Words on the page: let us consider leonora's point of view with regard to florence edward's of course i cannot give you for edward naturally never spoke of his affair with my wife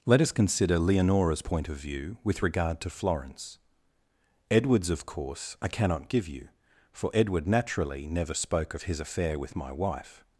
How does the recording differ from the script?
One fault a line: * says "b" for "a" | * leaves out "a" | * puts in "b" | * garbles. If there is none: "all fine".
all fine